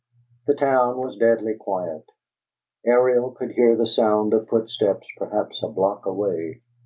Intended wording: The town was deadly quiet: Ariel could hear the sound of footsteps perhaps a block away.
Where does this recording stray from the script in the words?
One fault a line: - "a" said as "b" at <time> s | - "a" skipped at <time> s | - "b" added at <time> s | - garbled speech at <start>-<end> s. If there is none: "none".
none